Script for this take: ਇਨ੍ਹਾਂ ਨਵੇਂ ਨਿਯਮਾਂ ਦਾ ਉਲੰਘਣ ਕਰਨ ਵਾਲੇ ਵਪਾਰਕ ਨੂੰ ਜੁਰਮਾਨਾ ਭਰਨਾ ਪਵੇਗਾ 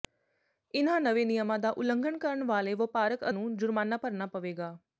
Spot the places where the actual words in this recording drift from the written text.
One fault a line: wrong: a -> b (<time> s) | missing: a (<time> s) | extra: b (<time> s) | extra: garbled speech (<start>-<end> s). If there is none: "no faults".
no faults